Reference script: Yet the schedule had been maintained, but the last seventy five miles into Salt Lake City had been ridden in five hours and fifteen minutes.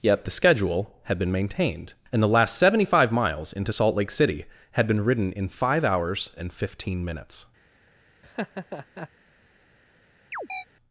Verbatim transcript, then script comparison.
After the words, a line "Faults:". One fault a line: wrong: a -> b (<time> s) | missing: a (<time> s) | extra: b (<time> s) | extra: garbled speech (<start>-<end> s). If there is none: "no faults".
Yet the schedule had been maintained, and the last seventy five miles into Salt Lake City had been ridden in five hours and fifteen minutes.
Faults:
wrong: but -> and (2.1 s)